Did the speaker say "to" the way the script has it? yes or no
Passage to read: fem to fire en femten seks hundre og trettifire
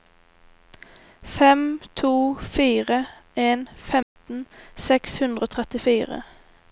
yes